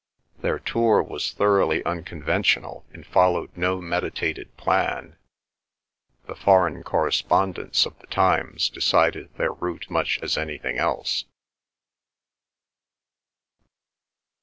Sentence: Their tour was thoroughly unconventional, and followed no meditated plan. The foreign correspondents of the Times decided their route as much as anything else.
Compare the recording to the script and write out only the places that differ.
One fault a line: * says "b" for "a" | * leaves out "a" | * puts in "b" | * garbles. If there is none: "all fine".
* leaves out "as"